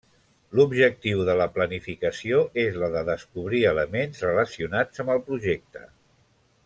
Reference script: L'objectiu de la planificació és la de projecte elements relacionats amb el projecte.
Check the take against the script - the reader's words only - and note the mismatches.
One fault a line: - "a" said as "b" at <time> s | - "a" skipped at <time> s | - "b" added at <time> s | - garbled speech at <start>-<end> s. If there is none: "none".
- "projecte" said as "descobrir" at 3.1 s